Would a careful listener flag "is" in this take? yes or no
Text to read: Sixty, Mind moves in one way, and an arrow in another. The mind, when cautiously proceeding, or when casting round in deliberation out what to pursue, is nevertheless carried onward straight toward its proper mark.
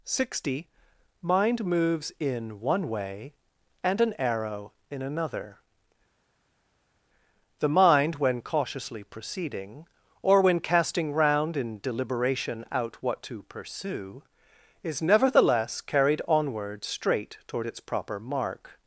no